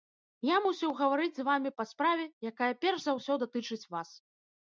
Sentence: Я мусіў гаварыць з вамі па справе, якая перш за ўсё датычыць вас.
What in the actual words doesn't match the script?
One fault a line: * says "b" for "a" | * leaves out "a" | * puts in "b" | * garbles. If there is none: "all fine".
all fine